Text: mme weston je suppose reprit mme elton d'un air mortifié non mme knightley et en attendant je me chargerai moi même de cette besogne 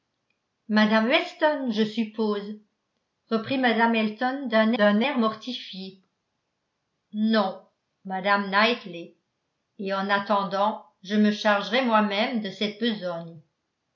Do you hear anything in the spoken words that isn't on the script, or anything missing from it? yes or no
yes